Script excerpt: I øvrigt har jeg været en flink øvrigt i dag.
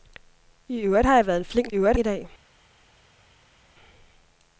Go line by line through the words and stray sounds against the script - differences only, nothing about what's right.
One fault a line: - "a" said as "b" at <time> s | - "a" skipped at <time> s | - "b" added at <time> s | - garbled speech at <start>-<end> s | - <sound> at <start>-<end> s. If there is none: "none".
none